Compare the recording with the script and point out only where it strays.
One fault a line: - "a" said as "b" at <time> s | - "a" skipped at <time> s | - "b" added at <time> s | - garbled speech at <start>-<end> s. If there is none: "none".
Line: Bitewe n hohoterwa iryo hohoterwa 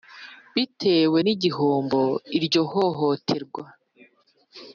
- "hohoterwa" said as "igihombo" at 1.3 s